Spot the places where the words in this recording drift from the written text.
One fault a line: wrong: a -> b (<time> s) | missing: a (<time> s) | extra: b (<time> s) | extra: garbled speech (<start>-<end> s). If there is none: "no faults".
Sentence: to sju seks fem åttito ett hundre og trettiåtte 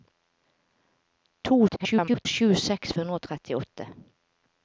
extra: garbled speech (1.7-2.3 s)
missing: fem åttito ett (2.9 s)